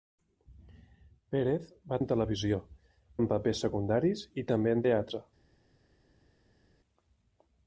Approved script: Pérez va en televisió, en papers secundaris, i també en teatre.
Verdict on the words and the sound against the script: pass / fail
pass